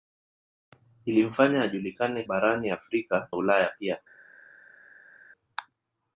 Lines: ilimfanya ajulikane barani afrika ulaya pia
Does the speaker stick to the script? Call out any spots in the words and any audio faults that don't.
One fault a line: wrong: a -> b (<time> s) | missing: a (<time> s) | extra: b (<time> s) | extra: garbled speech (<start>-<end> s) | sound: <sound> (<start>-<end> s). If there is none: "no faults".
no faults